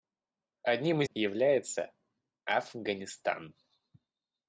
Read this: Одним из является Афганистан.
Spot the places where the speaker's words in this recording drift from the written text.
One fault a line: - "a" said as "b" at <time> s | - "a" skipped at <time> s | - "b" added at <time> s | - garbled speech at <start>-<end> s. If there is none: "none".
none